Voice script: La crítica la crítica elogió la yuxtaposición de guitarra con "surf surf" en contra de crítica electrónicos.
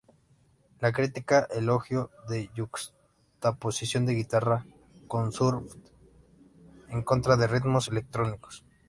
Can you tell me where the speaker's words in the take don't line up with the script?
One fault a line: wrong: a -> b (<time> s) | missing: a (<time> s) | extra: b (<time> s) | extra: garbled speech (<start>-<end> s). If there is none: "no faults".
missing: la crítica (1.5 s)
missing: surf (5.7 s)
wrong: crítica -> ritmos (7.5 s)